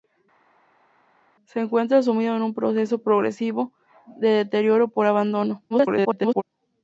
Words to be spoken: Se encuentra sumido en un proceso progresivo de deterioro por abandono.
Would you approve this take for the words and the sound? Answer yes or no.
no